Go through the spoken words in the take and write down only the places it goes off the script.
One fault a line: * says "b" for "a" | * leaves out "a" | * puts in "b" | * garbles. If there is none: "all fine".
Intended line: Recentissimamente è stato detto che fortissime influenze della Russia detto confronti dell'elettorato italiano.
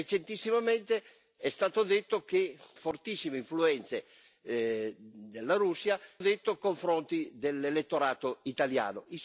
all fine